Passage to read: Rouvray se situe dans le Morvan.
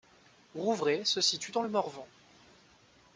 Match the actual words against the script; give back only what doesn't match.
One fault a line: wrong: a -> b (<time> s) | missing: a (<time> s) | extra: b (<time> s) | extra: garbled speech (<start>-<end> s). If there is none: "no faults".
no faults